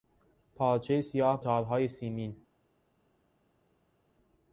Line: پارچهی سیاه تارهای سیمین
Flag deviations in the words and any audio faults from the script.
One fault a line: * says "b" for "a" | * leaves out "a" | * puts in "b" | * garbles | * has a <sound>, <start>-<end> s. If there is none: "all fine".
all fine